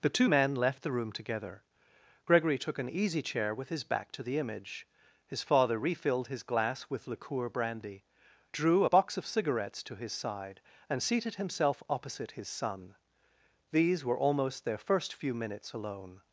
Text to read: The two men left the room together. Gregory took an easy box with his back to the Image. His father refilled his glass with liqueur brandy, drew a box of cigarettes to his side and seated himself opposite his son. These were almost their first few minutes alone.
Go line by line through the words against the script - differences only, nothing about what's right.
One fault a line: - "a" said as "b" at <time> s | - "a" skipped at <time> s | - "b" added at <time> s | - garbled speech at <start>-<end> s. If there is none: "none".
- "box" said as "chair" at 3.2 s